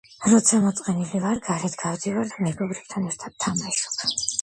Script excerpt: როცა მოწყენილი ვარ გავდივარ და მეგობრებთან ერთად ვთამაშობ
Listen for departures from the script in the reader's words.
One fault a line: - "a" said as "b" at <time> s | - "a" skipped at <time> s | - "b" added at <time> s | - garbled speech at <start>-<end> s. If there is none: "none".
- "გარეთ" added at 1.5 s